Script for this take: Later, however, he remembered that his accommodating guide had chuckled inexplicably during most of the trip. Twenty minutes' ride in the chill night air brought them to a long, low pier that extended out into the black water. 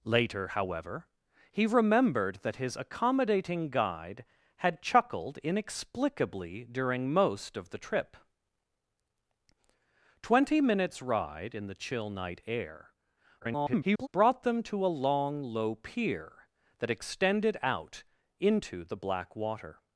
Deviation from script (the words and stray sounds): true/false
true